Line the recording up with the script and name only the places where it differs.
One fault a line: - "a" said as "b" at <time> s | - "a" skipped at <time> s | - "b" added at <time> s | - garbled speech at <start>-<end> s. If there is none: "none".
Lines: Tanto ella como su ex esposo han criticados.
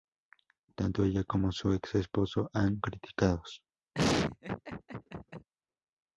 none